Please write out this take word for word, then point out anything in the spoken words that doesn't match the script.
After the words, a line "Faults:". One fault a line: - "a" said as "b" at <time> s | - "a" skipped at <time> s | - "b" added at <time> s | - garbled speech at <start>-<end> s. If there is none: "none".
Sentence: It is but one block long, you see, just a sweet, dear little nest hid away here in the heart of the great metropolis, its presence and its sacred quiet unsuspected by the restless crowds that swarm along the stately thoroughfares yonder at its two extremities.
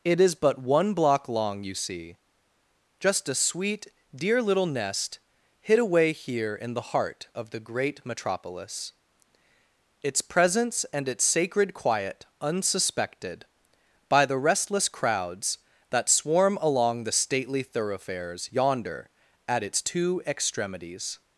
It is but one block long, you see, just a sweet, dear little nest hid away here in the heart of the great metropolis, its presence and its sacred quiet unsuspected by the restless crowds that swarm along the stately thoroughfares yonder at its two extremities.
Faults:
none